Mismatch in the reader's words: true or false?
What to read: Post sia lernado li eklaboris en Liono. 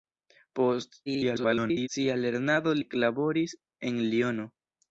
true